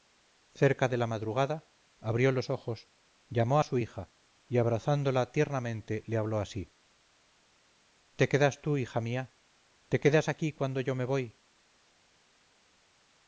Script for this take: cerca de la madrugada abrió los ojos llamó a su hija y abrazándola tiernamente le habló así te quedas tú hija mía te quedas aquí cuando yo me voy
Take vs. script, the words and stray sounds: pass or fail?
pass